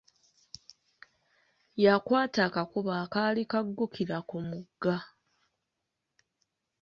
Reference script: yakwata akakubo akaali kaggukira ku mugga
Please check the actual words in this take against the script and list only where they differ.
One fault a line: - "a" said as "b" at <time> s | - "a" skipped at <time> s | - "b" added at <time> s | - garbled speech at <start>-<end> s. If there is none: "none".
none